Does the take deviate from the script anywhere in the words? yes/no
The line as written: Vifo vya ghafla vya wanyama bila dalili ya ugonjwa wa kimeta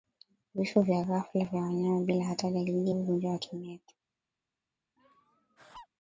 yes